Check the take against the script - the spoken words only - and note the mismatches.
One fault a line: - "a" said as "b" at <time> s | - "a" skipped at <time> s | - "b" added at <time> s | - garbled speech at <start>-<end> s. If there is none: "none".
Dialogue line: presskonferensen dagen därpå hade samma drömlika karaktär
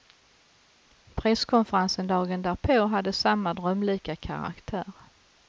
none